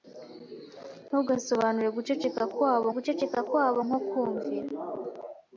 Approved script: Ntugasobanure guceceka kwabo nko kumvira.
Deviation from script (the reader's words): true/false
true